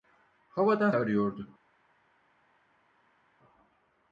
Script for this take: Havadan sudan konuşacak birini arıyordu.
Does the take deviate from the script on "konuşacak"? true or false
true